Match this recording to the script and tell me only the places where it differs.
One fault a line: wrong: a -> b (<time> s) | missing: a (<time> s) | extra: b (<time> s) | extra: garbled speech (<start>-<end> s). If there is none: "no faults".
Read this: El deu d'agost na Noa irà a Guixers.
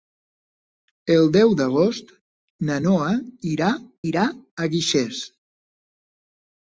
extra: irà (4.1 s)